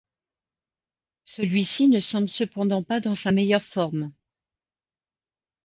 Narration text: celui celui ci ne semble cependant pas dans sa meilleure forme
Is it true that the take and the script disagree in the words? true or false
true